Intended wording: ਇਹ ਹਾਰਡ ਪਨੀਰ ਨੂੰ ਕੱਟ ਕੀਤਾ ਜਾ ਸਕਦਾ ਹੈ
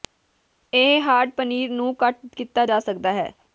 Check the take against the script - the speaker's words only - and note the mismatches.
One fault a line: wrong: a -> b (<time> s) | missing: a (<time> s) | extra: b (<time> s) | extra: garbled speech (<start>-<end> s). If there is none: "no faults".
no faults